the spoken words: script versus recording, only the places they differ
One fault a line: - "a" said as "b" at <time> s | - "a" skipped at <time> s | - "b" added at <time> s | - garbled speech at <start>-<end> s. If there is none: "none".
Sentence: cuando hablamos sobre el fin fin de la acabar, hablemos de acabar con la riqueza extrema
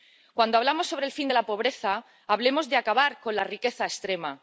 - "fin" skipped at 1.3 s
- "acabar" said as "pobreza" at 1.4 s